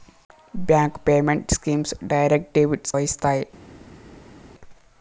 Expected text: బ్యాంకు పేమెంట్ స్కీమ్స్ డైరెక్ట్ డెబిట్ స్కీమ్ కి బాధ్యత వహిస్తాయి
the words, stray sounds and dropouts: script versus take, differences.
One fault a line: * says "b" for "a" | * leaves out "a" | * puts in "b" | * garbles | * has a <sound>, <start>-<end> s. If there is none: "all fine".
* leaves out "స్కీమ్ కి బాధ్యత"